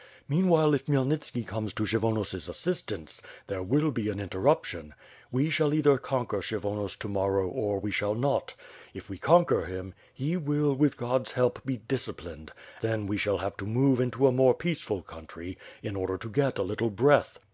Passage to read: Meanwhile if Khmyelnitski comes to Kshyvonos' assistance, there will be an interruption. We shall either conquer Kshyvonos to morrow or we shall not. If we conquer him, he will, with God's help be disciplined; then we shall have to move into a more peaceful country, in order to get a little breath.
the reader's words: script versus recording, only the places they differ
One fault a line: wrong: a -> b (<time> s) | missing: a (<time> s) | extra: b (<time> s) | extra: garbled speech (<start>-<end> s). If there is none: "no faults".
no faults